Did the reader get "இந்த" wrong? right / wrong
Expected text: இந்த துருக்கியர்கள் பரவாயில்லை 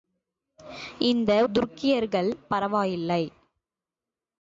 right